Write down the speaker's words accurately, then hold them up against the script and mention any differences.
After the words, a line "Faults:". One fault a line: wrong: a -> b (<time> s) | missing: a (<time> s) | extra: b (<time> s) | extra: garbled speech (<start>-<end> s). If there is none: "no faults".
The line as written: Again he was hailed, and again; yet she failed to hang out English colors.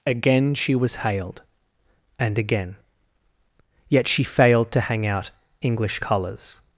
Again she was hailed, and again; yet she failed to hang out English colors.
Faults:
wrong: he -> she (0.6 s)